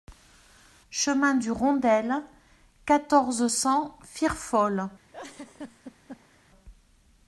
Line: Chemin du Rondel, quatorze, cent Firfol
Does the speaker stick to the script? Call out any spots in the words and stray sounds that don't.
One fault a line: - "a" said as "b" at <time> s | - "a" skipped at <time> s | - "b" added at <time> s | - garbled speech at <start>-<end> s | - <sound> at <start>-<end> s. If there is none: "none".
- laugh at 5.1-6.4 s